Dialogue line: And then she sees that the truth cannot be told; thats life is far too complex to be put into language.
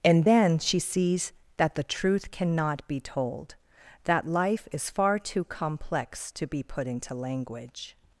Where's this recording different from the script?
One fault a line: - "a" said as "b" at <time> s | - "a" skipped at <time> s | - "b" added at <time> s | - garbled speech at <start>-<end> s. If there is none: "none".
- "thats" said as "that" at 4.0 s